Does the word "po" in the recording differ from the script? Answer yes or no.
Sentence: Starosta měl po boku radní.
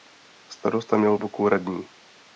yes